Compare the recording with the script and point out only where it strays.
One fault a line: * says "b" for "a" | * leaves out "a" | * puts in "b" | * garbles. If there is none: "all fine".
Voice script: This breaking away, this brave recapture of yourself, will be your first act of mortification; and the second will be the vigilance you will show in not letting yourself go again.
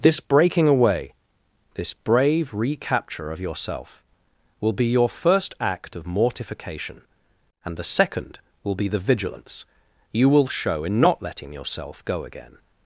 all fine